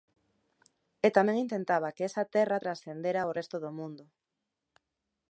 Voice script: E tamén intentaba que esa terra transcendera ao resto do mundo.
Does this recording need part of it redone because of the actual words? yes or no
no